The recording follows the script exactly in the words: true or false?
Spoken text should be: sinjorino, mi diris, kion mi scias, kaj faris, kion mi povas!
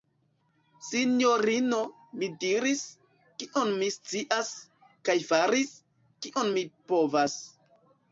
true